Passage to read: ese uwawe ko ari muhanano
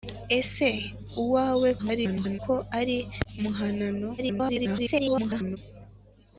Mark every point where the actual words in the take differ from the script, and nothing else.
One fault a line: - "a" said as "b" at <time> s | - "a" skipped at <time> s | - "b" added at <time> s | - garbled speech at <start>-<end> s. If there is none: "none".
- garbled speech at 1.8-2.4 s
- garbled speech at 4.2-5.6 s